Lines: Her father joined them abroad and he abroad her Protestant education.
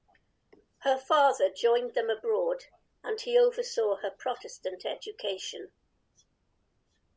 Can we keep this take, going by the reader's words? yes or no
no